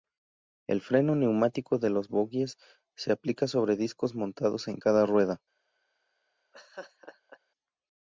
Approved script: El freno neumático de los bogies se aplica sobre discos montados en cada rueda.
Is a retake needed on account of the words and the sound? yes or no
yes